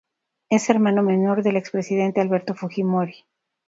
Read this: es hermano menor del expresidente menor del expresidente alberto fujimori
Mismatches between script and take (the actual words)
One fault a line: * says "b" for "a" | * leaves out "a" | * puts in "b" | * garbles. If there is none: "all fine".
* leaves out "menor del expresidente"